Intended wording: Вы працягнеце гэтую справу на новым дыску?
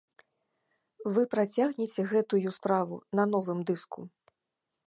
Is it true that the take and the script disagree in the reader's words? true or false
false